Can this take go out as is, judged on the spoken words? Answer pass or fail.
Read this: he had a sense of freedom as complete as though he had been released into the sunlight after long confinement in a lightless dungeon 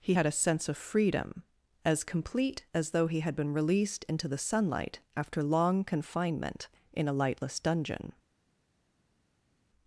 pass